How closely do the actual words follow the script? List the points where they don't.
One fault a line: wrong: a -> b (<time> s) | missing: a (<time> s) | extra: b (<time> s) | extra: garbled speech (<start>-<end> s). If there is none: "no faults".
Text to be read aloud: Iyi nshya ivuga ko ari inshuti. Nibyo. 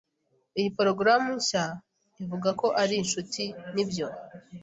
extra: porogaramu (0.8 s)